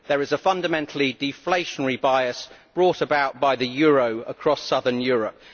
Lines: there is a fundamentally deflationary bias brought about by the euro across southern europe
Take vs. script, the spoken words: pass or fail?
pass